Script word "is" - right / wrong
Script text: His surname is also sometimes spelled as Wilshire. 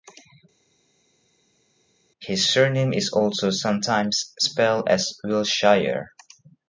right